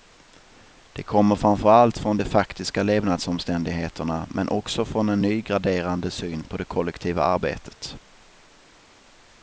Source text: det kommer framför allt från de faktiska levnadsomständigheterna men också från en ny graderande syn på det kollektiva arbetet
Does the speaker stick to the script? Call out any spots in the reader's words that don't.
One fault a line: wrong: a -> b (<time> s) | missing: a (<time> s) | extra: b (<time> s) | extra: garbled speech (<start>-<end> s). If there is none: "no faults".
no faults